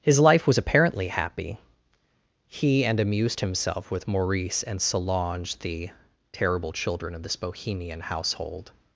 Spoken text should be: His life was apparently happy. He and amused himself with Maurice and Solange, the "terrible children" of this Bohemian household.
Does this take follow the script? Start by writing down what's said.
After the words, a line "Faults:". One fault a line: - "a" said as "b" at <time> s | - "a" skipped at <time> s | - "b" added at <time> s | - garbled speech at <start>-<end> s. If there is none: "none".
His life was apparently happy. He and amused himself with Maurice and Solange, the "terrible children" of this Bohemian household.
Faults:
none